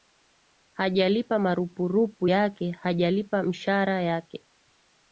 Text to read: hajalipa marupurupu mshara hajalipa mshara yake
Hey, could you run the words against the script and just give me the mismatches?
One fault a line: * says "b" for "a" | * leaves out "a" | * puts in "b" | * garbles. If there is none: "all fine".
* says "yake" for "mshara"